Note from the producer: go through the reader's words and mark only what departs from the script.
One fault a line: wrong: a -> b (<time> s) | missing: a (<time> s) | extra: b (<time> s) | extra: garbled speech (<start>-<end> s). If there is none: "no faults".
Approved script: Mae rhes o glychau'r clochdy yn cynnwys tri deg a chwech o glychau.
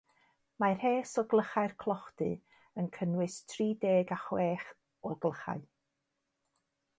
no faults